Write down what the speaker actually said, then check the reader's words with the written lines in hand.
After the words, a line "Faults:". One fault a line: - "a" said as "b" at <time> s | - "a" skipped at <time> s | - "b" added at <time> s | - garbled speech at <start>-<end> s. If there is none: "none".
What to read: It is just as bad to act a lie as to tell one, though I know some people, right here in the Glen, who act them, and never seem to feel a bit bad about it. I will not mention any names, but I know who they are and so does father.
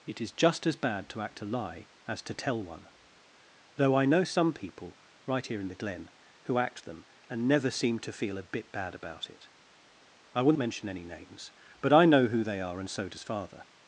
It is just as bad to act a lie as to tell one, though I know some people, right here in the Glen, who act them, and never seem to feel a bit bad about it. I will mention any names, but I know who they are and so does father.
Faults:
- "not" skipped at 10.5 s